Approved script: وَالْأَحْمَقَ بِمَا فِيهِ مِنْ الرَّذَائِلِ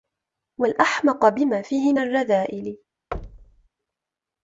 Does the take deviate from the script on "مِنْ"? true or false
true